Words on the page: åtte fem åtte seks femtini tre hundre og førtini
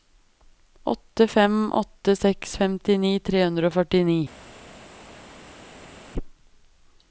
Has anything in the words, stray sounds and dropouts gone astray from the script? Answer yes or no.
no